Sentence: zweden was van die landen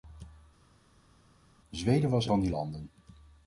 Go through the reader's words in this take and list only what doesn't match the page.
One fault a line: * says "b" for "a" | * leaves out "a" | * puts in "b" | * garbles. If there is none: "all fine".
all fine